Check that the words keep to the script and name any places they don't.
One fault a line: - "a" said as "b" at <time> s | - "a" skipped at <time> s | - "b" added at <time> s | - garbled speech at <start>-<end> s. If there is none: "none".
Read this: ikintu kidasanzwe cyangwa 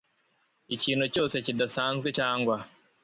- "cyose" added at 1.1 s